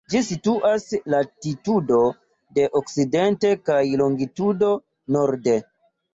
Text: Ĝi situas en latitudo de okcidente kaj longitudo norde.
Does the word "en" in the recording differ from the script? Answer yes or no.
yes